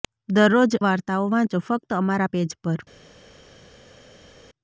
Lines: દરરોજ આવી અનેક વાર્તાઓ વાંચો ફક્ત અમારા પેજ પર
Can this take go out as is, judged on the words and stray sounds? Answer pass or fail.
fail